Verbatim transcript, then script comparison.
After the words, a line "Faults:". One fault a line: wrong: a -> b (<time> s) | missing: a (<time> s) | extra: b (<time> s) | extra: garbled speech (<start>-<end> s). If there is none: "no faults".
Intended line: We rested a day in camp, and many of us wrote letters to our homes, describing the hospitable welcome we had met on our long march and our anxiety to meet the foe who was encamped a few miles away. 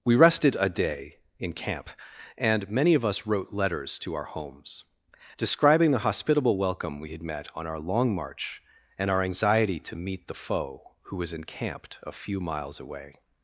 We rested a day in camp, and many of us wrote letters to our homes, describing the hospitable welcome we had met on our long march and our anxiety to meet the foe who was encamped a few miles away.
Faults:
no faults